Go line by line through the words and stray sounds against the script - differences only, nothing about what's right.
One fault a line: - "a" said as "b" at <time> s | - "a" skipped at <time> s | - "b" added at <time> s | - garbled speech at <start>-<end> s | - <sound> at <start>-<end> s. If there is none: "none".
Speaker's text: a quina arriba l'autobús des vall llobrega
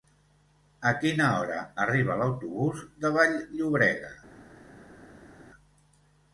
- "hora" added at 1.4 s
- "des" said as "de" at 3.0 s